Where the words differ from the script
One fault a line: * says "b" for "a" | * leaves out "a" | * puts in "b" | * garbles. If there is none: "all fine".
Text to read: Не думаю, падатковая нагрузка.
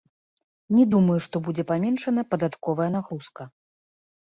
* puts in "што будзе паменшана"